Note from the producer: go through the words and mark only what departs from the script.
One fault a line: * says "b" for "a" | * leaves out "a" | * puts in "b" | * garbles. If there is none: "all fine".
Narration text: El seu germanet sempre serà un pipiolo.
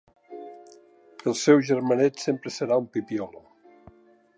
all fine